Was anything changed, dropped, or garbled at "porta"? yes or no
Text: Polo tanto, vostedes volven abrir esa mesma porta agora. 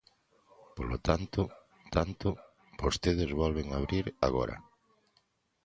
yes